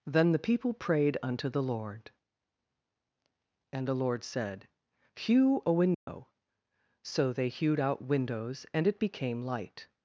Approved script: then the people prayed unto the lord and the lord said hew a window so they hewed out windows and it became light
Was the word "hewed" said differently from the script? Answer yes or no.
no